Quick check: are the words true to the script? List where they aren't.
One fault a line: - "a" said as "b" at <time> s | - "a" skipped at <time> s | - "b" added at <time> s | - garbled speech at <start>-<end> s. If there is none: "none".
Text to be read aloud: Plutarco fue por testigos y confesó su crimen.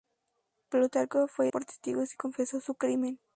none